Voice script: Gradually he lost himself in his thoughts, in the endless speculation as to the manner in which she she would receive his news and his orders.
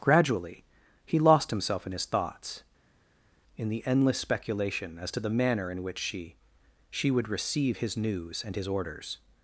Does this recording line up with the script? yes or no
yes